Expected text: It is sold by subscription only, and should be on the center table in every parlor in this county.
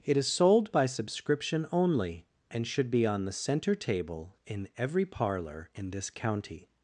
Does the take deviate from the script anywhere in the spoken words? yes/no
no